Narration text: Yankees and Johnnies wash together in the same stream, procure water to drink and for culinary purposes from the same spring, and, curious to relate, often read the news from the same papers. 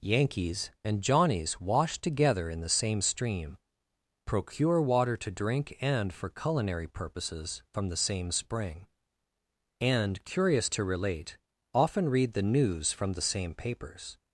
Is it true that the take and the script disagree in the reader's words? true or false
false